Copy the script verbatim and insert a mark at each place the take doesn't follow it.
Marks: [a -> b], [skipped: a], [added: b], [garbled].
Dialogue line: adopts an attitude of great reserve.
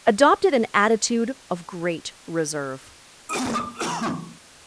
[adopts -> adopted] an attitude of great reserve.